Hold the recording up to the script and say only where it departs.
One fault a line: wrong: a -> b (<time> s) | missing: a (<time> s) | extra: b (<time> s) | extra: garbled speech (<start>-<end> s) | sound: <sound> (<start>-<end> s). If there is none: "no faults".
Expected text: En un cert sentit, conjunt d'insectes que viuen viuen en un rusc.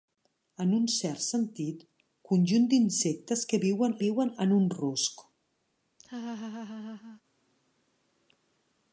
sound: laugh (6.0-7.2 s)